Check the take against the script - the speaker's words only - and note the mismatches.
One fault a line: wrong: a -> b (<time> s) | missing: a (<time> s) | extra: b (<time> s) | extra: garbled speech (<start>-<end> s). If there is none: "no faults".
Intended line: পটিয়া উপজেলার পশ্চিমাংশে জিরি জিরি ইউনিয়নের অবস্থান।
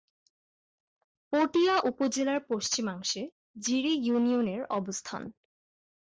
missing: জিরি (3.9 s)